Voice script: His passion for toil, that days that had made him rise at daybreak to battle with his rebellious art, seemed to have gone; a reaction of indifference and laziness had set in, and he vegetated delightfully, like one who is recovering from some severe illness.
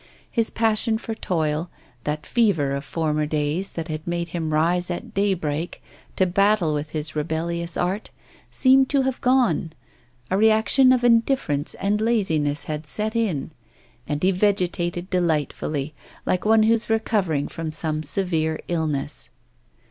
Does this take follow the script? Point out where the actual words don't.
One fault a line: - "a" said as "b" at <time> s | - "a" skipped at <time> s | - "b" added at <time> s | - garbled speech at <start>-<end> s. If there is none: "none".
- "fever of former" added at 2.2 s